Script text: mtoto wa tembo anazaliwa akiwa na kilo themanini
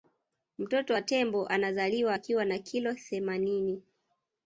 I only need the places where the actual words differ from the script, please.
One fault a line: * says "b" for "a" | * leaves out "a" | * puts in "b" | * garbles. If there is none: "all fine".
all fine